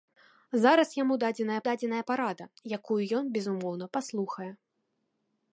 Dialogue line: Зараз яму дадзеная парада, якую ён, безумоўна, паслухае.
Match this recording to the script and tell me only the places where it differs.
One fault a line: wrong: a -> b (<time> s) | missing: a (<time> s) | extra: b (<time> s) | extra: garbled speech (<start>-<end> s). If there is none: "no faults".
extra: дадзеная (1.7 s)